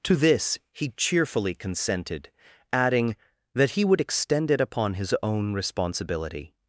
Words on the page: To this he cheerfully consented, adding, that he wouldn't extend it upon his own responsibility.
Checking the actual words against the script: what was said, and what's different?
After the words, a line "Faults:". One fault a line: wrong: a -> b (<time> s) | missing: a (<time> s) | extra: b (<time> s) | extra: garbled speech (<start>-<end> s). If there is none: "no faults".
To this he cheerfully consented, adding, that he would extend it upon his own responsibility.
Faults:
wrong: wouldn't -> would (3.8 s)